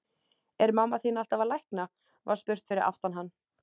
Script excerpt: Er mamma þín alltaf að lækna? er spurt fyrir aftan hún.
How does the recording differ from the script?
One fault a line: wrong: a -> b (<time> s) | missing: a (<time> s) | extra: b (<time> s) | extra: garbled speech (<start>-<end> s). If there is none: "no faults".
wrong: er -> var (2.3 s)
wrong: hún -> hann (3.2 s)